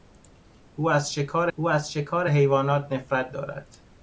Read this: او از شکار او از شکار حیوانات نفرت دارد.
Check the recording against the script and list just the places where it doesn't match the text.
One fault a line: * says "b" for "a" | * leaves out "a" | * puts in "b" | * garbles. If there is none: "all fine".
all fine